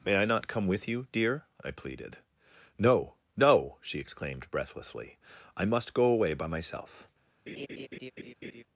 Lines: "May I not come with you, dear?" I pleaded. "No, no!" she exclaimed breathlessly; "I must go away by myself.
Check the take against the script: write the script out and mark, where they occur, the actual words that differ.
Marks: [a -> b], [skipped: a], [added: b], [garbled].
"May I not come with you, dear?" I pleaded. "No, no!" she exclaimed breathlessly; "I must go away by myself.